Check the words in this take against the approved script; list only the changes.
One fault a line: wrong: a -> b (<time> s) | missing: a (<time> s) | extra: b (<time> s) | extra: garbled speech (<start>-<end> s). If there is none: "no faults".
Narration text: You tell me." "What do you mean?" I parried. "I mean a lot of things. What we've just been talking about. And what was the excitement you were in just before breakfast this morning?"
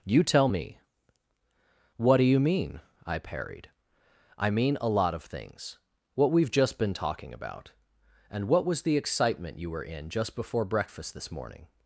no faults